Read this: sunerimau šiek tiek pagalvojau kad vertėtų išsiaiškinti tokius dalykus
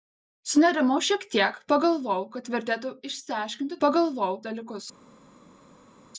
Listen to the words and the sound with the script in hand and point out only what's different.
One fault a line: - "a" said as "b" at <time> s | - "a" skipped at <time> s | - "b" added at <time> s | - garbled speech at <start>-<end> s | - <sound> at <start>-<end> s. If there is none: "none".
- "tokius" said as "pagalvojau" at 3.9 s